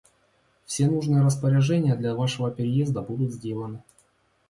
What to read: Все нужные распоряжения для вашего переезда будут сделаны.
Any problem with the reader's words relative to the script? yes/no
no